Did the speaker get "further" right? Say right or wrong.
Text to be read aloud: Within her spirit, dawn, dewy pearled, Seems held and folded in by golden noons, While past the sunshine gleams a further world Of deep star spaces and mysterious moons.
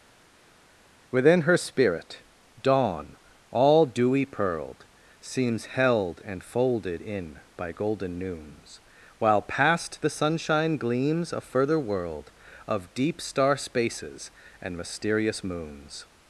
right